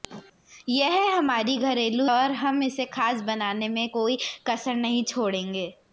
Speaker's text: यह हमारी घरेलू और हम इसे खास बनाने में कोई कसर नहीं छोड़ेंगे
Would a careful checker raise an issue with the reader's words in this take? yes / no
no